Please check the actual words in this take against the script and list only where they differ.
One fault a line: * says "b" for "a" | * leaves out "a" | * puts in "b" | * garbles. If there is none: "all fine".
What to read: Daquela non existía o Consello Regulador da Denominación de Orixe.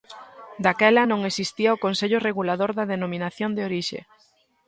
all fine